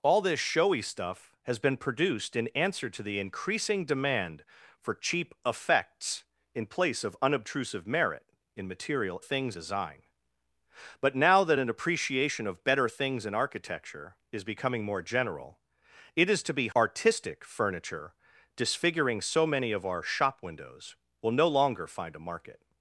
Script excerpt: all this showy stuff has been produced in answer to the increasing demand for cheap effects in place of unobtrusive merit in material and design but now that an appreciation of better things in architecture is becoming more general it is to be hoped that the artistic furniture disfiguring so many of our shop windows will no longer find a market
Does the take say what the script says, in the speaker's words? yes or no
no